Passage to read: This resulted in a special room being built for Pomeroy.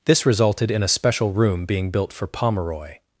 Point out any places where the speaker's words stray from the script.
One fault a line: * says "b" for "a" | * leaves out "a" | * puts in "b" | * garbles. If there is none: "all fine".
all fine